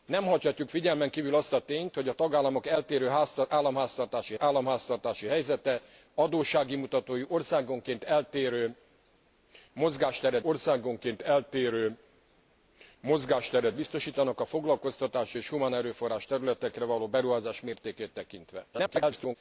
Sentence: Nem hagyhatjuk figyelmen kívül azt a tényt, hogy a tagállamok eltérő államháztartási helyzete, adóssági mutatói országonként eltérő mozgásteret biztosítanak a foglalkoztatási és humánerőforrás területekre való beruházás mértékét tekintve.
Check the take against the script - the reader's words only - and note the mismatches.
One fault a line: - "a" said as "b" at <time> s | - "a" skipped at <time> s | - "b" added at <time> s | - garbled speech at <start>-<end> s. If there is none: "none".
- "államháztartási" added at 4.4 s
- "országonként eltérő mozgásteret" added at 10.4 s
- garbled speech at 18.7-19.4 s